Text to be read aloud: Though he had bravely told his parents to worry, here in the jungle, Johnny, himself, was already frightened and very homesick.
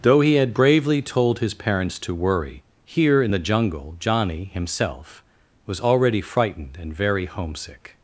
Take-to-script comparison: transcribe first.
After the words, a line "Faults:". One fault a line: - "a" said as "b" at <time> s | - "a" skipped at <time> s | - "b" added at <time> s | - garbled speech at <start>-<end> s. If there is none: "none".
Though he had bravely told his parents to worry, here in the jungle, Johnny, himself, was already frightened and very homesick.
Faults:
none